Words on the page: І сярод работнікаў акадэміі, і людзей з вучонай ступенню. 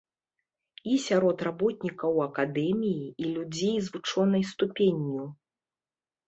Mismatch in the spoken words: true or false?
false